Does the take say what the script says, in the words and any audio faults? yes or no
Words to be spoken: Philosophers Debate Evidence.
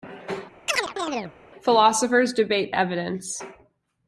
no